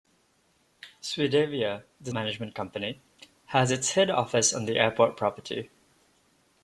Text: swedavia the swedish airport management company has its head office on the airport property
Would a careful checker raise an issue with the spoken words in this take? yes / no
yes